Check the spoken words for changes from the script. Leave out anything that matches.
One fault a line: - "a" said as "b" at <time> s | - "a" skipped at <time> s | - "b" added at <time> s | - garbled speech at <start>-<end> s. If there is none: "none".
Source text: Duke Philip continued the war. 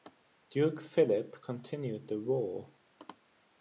none